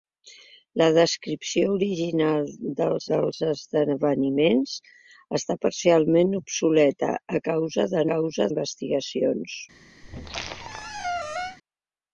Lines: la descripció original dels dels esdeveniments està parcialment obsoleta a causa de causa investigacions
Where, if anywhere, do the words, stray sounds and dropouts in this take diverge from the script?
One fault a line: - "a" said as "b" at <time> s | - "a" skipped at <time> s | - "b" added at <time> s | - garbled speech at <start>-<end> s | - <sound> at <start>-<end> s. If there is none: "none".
- squeak at 10.0-11.6 s